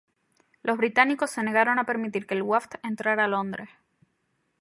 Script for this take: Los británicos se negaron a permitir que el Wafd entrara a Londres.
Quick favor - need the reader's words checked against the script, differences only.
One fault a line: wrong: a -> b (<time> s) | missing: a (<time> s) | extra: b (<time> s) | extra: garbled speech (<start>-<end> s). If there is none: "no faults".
no faults